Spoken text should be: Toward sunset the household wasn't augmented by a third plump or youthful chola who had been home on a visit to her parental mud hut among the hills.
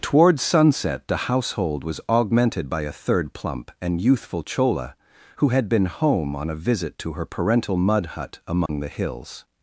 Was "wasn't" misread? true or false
true